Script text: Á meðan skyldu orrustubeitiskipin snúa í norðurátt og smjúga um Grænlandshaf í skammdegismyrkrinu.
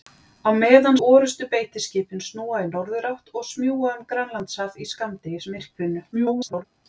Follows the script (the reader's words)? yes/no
no